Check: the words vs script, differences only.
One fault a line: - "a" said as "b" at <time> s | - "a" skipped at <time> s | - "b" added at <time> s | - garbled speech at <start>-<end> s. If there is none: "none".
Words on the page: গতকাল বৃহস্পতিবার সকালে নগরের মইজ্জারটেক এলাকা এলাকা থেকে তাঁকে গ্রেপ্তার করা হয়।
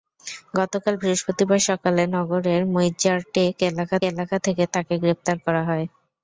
none